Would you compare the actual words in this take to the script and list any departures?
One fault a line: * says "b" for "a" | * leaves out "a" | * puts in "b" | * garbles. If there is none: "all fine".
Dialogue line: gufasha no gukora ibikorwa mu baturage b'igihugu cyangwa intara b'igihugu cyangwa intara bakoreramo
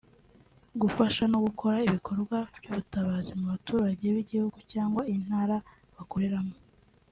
* puts in "by'ubutabazi"
* leaves out "b'igihugu cyangwa intara"